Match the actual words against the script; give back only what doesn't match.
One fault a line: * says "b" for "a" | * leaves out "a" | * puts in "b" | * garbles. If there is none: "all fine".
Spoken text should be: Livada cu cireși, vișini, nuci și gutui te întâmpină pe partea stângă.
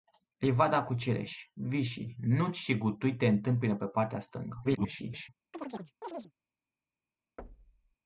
* garbles